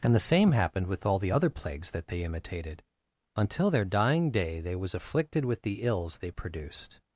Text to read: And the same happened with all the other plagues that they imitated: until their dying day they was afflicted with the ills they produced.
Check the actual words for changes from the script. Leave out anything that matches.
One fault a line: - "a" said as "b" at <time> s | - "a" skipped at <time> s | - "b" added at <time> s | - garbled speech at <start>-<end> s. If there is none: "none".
none